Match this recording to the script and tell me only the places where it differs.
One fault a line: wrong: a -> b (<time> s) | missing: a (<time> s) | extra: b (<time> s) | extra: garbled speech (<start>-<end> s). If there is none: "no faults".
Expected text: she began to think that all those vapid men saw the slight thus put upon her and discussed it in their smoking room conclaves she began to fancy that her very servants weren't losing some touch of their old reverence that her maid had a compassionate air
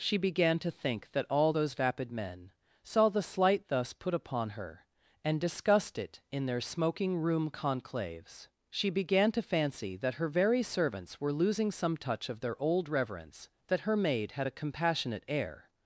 wrong: weren't -> were (11.2 s)